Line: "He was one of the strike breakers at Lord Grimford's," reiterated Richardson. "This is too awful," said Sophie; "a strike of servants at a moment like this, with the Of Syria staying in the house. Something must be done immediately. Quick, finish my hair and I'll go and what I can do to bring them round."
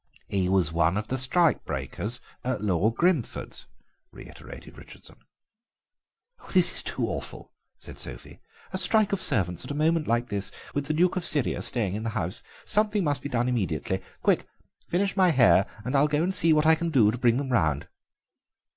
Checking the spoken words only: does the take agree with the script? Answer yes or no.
no